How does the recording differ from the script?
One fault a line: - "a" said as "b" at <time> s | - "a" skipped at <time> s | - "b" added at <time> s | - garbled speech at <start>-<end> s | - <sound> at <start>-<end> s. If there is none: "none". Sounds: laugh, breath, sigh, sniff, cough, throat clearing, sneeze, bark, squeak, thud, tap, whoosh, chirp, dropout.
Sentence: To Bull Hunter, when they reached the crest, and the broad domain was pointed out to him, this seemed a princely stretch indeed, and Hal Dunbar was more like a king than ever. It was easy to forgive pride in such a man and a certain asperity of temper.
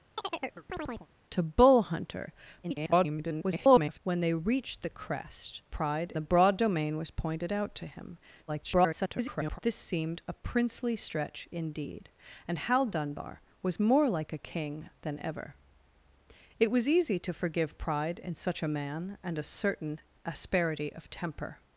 - chirp at 0.2-1.1 s
- garbled speech at 2.6-4.0 s
- "and" said as "pride" at 5.7 s
- garbled speech at 8.5-9.6 s